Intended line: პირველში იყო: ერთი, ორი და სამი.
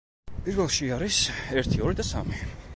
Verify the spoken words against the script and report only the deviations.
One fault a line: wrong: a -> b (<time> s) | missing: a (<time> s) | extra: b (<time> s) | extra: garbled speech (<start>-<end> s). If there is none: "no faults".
wrong: იყო -> არის (0.9 s)